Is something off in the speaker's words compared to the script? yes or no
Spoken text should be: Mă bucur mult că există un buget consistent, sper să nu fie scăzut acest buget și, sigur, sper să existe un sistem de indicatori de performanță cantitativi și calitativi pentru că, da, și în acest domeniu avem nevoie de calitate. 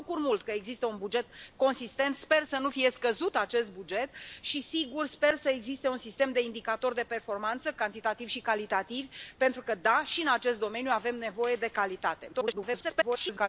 yes